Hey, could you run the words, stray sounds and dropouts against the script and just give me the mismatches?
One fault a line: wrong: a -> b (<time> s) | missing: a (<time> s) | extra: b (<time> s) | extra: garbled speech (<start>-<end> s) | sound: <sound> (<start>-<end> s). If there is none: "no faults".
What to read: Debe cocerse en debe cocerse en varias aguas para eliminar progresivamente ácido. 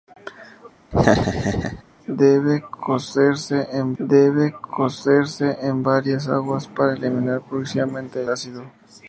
sound: laugh (0.9-1.8 s)